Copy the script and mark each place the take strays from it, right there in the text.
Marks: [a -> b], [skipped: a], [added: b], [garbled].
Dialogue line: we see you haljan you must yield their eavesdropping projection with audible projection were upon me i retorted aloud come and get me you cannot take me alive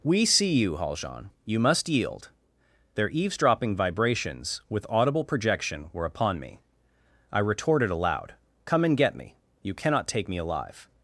we see you haljan you must yield their eavesdropping [projection -> vibrations] with audible projection were upon me i retorted aloud come and get me you cannot take me alive